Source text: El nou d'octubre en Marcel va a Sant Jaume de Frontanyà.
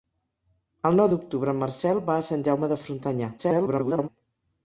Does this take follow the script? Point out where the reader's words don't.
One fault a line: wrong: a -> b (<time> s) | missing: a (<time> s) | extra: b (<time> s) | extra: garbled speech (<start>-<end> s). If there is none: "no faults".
extra: garbled speech (3.4-4.1 s)